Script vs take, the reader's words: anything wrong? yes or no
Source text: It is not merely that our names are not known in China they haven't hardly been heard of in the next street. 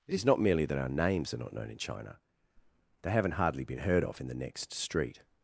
no